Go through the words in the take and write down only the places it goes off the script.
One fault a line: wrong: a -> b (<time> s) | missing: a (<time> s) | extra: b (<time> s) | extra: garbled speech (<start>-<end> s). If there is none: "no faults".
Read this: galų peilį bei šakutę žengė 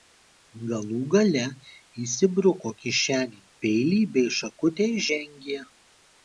extra: gale įsibruko kišenėn (1.1 s)
extra: ir (5.0 s)